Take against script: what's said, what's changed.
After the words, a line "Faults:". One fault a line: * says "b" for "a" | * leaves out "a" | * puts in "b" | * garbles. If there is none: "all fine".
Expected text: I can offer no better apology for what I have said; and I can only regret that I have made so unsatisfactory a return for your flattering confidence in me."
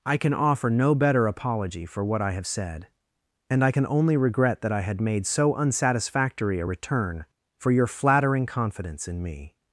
I can offer no better apology for what I have said; and I can only regret that I had made so unsatisfactory a return for your flattering confidence in me."
Faults:
* says "had" for "have"